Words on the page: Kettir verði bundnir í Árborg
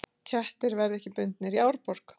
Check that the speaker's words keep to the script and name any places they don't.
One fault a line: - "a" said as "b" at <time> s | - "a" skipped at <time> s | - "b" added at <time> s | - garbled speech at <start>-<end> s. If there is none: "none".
- "ekki" added at 1.0 s